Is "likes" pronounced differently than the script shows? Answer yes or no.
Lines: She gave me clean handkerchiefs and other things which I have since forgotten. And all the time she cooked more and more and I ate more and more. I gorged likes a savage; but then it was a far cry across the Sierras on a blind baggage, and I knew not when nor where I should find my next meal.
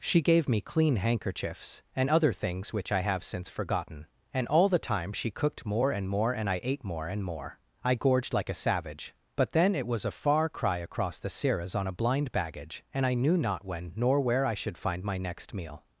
yes